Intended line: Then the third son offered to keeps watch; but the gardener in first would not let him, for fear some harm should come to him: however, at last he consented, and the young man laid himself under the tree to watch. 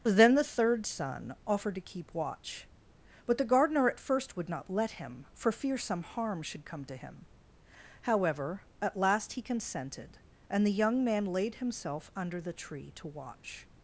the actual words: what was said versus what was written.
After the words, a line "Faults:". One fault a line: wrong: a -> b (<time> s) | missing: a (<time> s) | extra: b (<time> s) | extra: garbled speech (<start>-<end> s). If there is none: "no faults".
Then the third son offered to keep watch; but the gardener at first would not let him, for fear some harm should come to him: however, at last he consented, and the young man laid himself under the tree to watch.
Faults:
wrong: keeps -> keep (1.8 s)
wrong: in -> at (3.9 s)